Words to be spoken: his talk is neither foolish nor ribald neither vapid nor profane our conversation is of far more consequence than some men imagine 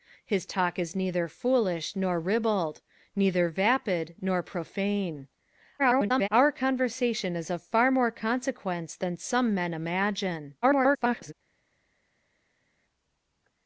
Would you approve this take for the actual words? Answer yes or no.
no